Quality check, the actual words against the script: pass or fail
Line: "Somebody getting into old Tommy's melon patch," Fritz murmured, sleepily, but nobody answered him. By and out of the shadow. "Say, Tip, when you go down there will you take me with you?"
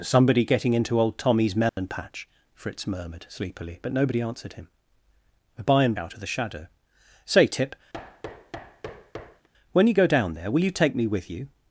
pass